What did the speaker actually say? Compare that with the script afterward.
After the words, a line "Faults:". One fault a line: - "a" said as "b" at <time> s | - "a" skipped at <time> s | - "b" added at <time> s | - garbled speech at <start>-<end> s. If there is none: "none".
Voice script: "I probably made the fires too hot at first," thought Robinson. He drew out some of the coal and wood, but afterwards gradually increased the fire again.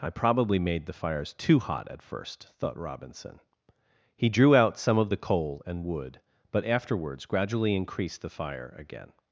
"I probably made the fires too hot at first," thought Robinson. He drew out some of the coal and wood, but afterwards gradually increased the fire again.
Faults:
none